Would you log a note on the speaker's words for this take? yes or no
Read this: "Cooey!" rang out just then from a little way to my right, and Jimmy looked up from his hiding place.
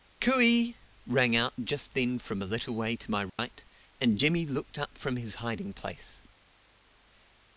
no